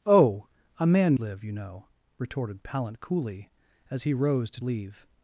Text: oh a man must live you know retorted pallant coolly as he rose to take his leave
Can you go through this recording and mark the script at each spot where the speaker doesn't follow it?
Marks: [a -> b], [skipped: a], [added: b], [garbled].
oh a man [skipped: must] live you know retorted pallant coolly as he rose to [skipped: take his] leave